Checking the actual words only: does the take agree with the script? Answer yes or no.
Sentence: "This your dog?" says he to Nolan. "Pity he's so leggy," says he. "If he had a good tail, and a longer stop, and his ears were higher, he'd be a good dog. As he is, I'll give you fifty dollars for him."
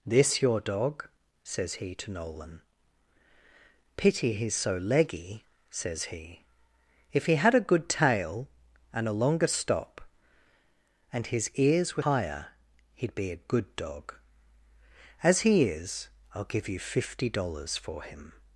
yes